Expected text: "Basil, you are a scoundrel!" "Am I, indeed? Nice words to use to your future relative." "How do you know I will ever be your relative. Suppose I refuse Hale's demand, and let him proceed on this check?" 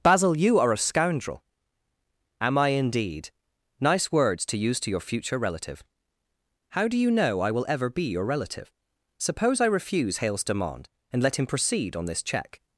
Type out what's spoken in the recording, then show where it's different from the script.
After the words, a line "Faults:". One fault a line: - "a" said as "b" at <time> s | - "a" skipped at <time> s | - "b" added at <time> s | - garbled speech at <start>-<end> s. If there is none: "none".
"Basil, you are a scoundrel!" "Am I, indeed? Nice words to use to your future relative." "How do you know I will ever be your relative. Suppose I refuse Hale's demand, and let him proceed on this check?"
Faults:
none